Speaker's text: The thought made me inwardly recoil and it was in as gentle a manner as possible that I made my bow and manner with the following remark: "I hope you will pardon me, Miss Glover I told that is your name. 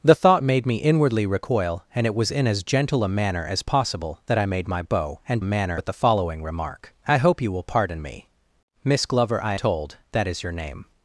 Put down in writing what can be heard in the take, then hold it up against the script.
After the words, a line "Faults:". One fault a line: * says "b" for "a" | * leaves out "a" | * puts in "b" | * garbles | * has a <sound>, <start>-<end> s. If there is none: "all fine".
The thought made me inwardly recoil and it was in as gentle a manner as possible that I made my bow and manner with the following remark: "I hope you will pardon me, Miss Glover I told that is your name.
Faults:
all fine